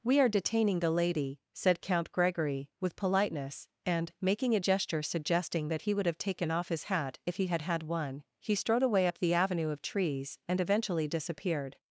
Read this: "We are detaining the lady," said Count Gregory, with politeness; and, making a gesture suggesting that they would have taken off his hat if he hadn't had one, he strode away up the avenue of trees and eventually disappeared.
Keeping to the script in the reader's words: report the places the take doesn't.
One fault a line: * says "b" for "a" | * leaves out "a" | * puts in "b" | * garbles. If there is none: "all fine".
* says "he" for "they"
* says "had" for "hadn't"